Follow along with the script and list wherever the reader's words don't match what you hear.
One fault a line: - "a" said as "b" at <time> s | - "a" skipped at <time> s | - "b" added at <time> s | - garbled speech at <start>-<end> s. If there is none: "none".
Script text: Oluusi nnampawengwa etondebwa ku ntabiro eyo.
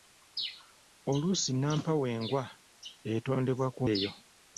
- "ntabiro" skipped at 3.8 s